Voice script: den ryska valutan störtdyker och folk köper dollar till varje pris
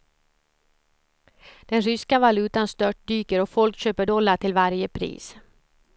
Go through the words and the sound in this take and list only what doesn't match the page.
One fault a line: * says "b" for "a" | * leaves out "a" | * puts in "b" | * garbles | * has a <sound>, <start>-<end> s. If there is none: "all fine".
all fine